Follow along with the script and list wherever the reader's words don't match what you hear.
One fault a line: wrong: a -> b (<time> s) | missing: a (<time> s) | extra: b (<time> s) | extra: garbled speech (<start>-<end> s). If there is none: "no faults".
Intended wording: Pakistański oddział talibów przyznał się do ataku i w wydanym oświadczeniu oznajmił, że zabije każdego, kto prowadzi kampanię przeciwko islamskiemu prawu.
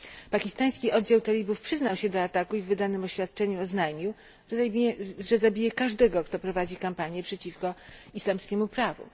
no faults